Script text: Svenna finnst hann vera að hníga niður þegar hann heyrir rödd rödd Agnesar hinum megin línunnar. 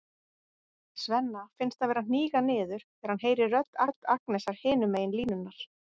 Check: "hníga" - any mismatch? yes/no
no